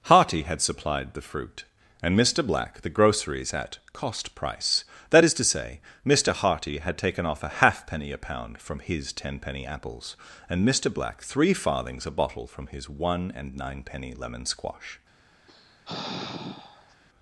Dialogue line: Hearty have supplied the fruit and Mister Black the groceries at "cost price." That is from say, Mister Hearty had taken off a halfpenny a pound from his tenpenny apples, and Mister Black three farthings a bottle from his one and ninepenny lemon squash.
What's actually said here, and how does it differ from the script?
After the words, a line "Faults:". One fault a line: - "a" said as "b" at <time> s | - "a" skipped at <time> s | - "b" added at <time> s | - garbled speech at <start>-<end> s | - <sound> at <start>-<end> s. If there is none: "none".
Hearty had supplied the fruit and Mister Black the groceries at "cost price." That is to say, Mister Hearty had taken off a halfpenny a pound from his tenpenny apples, and Mister Black three farthings a bottle from his one and ninepenny lemon squash.
Faults:
- "have" said as "had" at 0.4 s
- "from" said as "to" at 5.3 s
- sigh at 15.5-17.0 s